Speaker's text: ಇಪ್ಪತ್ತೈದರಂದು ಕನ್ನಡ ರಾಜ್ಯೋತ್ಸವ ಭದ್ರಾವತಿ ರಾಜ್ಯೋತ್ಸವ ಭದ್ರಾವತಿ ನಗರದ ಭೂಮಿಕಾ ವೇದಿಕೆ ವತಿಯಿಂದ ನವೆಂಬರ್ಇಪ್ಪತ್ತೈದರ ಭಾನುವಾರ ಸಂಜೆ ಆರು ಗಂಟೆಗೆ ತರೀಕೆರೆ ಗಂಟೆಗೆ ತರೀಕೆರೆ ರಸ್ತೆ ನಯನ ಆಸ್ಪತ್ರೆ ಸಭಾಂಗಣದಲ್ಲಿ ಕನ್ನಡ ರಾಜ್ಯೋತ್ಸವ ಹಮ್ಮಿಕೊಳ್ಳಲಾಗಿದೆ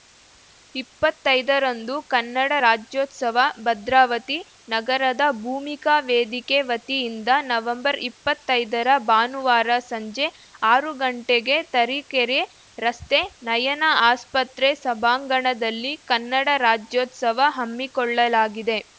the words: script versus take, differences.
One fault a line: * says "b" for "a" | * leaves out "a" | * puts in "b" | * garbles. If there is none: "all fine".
* leaves out "ರಾಜ್ಯೋತ್ಸವ ಭದ್ರಾವತಿ"
* leaves out "ಗಂಟೆಗೆ ತರೀಕೆರೆ"